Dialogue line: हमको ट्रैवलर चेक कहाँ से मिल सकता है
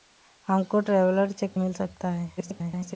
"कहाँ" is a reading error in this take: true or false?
true